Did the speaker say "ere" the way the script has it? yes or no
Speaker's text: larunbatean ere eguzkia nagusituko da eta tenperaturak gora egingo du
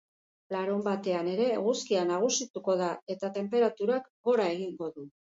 yes